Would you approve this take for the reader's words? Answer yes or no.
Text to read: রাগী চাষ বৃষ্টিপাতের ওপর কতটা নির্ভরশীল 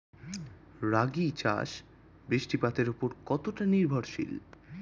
yes